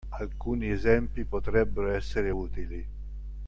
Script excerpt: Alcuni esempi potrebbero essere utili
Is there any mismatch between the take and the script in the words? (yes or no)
no